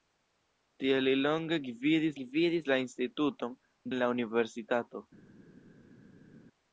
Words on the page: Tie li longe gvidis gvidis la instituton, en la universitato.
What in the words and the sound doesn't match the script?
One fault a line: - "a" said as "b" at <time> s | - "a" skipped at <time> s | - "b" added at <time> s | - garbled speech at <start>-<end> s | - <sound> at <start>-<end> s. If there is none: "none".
none